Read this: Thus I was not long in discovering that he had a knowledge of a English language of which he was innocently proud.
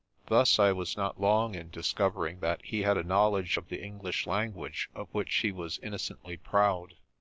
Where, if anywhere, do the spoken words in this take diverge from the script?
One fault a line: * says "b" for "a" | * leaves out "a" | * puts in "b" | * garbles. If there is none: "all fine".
* says "the" for "a"